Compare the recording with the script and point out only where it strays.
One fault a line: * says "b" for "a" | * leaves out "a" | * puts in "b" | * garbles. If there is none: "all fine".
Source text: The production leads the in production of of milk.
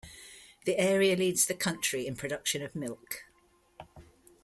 * says "area" for "production"
* puts in "country"
* leaves out "of"